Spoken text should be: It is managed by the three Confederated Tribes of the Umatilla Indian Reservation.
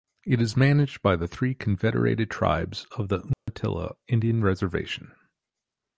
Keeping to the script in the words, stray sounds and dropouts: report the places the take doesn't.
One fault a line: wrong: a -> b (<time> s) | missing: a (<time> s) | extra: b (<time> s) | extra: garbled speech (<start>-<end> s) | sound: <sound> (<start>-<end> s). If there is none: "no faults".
sound: dropout (3.3-3.5 s)